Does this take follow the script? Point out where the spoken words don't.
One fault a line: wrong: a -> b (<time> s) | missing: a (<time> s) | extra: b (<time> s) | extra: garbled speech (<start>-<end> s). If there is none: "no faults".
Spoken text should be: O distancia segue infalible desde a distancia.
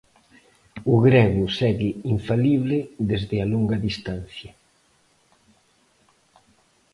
wrong: distancia -> grego (1.1 s)
extra: longa (3.5 s)